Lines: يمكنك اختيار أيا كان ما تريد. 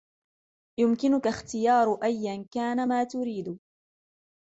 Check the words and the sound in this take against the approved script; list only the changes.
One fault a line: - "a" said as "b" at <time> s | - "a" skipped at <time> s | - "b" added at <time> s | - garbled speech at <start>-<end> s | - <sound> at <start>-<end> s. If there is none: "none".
none